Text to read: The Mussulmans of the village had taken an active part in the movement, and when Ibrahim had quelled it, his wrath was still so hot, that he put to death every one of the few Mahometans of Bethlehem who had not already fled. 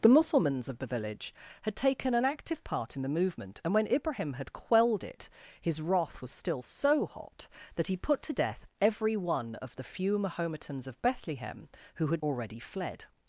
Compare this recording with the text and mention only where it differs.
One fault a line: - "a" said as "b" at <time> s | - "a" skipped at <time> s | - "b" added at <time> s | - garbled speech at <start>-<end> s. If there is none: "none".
- "not" skipped at 12.2 s